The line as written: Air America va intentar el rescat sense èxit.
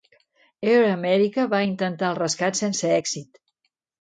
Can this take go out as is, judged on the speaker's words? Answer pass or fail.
pass